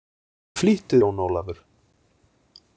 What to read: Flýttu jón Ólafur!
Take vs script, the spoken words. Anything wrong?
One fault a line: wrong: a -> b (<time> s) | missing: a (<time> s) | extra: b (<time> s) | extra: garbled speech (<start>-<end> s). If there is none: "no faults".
no faults